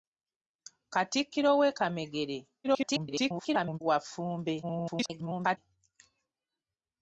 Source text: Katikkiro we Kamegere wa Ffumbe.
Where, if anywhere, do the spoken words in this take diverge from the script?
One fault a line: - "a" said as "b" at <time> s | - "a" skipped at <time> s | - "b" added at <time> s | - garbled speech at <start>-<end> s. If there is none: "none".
- garbled speech at 2.6-3.8 s
- garbled speech at 4.6-5.6 s